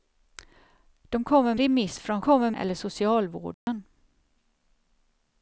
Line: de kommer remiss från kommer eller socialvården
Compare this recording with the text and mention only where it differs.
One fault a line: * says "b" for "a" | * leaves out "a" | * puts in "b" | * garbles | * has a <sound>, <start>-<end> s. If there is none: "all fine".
* has a dropout, 3.5-3.7 s